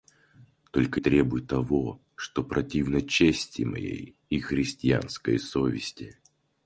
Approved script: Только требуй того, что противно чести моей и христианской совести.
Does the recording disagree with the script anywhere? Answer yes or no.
no